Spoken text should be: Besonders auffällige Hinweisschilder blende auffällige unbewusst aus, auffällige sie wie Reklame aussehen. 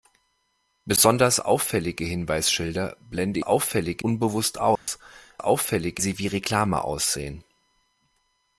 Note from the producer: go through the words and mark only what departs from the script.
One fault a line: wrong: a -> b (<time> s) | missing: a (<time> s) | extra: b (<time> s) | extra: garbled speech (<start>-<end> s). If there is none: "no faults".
no faults